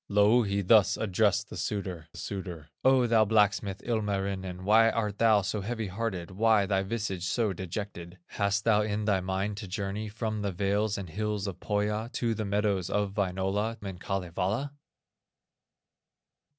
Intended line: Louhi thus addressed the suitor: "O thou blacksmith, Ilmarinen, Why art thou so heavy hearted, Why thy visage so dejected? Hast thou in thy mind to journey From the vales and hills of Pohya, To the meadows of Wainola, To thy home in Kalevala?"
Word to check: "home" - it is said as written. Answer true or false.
false